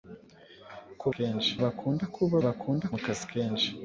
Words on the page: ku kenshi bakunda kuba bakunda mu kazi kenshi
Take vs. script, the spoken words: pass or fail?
pass